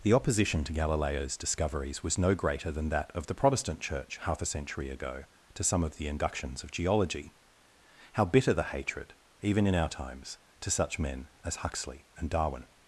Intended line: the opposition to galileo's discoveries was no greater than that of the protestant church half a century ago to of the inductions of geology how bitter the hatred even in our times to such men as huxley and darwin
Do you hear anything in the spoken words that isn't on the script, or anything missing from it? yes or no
yes